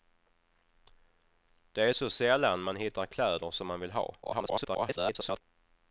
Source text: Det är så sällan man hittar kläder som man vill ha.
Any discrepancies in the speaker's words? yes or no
yes